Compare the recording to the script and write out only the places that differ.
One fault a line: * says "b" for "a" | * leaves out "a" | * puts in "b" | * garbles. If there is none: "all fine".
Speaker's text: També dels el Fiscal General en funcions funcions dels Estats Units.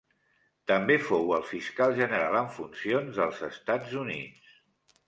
* says "fou" for "dels"
* leaves out "funcions"